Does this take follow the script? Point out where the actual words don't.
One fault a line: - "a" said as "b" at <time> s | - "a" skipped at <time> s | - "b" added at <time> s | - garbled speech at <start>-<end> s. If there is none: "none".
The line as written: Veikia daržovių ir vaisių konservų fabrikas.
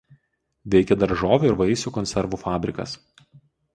none